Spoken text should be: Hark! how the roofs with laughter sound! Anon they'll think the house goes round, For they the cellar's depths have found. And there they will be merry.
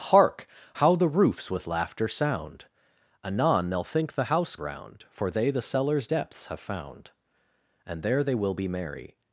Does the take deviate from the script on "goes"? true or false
true